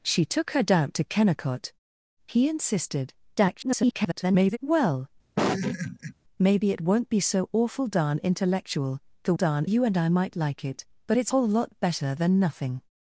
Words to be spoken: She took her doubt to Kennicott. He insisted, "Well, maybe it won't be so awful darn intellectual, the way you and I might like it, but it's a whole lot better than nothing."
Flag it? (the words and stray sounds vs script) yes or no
yes